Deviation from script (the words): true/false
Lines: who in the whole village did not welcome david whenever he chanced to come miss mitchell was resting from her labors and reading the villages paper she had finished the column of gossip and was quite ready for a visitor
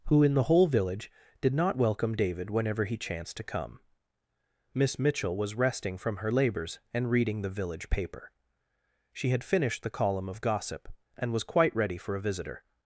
true